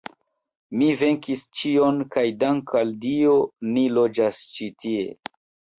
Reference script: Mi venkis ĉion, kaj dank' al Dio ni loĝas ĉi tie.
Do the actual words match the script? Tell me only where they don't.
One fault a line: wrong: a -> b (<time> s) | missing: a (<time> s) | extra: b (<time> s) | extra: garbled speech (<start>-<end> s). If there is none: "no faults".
no faults